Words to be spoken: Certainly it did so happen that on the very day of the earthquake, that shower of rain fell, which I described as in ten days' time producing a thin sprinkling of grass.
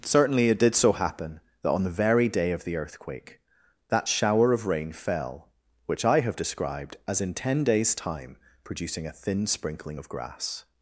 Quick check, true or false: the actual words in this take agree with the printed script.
false